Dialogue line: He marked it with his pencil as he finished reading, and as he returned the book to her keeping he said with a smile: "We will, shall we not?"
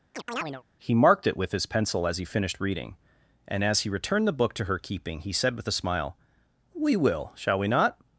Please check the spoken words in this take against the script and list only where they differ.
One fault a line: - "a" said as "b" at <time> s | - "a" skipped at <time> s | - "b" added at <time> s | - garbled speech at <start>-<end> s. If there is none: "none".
none